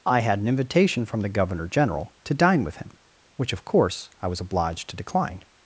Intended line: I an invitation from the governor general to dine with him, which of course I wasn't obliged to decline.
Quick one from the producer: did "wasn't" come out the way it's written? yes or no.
no